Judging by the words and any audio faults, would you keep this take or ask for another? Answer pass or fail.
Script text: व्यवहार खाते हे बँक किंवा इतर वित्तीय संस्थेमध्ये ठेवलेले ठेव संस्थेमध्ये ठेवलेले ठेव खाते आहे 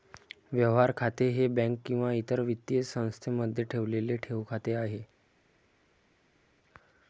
fail